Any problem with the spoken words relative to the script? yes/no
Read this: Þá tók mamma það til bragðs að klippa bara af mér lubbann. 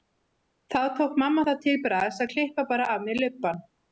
no